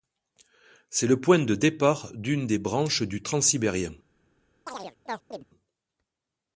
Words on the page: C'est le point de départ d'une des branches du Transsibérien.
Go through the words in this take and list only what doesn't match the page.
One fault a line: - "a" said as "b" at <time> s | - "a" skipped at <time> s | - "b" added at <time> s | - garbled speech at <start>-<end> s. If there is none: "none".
none